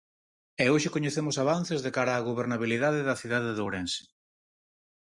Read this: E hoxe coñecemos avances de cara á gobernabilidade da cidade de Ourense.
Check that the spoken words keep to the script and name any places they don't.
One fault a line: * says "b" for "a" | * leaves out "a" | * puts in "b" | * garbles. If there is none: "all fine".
all fine